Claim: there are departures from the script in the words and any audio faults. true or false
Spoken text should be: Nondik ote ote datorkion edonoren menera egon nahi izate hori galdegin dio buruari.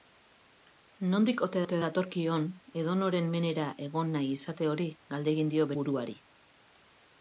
false